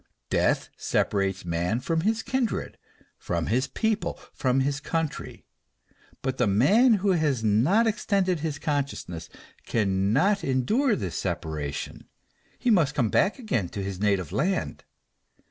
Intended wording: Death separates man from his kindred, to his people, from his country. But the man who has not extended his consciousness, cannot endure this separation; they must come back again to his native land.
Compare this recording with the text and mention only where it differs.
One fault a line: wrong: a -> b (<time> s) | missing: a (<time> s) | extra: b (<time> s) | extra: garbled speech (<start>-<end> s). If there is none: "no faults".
wrong: to -> from (3.2 s)
wrong: they -> he (12.6 s)